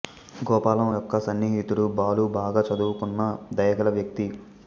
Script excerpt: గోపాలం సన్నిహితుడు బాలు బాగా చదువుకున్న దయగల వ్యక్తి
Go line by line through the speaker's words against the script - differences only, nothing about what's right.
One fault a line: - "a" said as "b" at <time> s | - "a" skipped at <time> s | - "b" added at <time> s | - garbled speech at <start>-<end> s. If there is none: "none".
- "యొక్క" added at 0.9 s